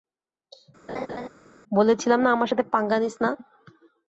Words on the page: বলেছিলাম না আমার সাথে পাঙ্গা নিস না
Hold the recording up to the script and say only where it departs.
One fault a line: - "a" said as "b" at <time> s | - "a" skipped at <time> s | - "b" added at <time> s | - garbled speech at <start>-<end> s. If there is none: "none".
none